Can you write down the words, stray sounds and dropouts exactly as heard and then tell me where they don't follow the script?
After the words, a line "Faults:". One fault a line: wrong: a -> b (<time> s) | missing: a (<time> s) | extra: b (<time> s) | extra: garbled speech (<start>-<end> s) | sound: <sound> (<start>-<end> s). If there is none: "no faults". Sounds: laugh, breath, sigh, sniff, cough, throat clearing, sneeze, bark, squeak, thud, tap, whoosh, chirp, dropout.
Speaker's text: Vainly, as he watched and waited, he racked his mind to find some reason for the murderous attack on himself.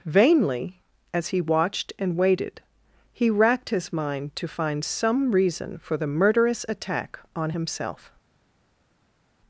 Vainly, as he watched and waited, he racked his mind to find some reason for the murderous attack on himself.
Faults:
no faults